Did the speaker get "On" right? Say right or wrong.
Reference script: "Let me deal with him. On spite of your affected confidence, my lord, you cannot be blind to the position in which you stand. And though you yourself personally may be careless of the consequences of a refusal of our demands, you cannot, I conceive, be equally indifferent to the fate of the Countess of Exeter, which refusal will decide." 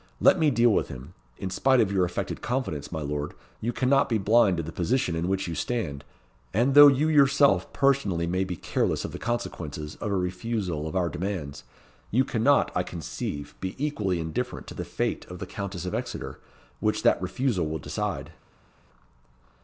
wrong